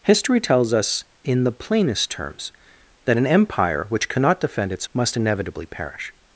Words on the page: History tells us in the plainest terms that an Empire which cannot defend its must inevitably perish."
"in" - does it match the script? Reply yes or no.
yes